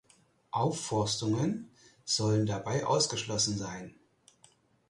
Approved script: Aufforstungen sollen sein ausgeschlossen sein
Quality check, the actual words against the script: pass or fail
fail